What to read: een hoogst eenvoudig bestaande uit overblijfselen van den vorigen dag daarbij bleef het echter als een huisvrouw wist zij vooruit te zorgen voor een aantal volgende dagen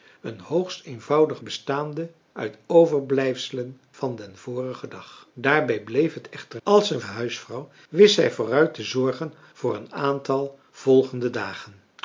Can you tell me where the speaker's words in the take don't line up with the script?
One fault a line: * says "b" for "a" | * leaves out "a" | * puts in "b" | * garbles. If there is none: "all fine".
all fine